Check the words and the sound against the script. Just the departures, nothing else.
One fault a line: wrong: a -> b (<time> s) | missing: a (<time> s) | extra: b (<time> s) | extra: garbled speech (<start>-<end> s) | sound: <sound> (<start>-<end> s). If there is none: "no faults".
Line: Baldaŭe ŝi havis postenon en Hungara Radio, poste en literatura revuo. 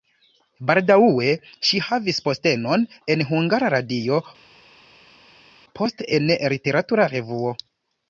no faults